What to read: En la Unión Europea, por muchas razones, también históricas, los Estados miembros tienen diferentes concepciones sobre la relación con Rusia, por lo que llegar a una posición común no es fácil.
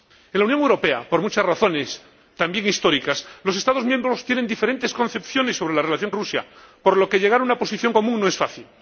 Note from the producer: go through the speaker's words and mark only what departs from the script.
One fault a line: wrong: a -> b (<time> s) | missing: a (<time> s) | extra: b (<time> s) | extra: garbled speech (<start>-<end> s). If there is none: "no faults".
missing: con (6.1 s)